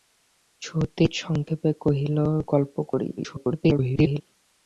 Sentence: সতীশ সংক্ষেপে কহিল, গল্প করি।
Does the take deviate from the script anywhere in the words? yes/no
yes